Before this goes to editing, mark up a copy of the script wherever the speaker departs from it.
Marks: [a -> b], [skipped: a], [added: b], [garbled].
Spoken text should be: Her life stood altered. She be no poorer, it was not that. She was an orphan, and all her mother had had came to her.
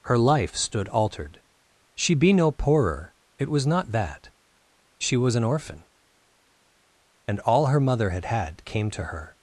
Her life stood altered. She be no poorer, it was not that. She was an orphan, and all her mother had had came to her.